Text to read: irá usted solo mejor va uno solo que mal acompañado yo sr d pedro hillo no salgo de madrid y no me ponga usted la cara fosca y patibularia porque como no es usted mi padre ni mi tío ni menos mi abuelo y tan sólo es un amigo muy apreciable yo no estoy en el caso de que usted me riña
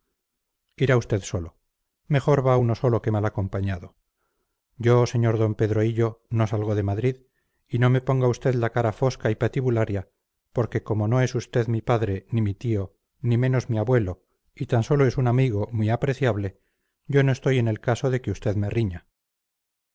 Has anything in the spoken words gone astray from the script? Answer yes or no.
no